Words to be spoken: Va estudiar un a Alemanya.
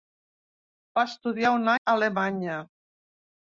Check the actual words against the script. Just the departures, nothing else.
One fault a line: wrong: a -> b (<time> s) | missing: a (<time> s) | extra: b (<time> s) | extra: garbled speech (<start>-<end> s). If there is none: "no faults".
no faults